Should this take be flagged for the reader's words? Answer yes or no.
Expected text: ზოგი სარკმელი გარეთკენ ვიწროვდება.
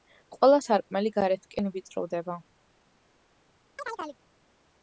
yes